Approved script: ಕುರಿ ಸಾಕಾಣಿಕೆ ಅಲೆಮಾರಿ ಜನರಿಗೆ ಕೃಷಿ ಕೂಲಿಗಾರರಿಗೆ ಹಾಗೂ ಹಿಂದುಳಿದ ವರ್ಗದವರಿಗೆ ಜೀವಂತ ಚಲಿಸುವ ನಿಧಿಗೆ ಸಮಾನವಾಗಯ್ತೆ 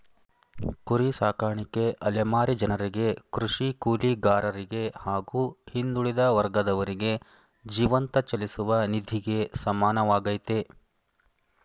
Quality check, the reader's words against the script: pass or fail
pass